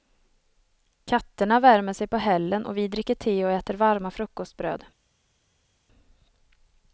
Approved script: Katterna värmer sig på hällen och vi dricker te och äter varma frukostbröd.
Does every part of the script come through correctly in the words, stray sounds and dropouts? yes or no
yes